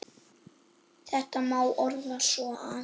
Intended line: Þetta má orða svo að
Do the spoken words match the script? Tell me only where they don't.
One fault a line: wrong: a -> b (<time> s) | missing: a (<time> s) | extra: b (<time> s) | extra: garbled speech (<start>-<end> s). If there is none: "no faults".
no faults